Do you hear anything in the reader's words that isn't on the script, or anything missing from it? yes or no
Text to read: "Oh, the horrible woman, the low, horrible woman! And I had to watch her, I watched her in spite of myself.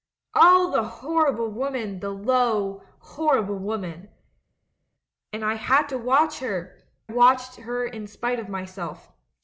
yes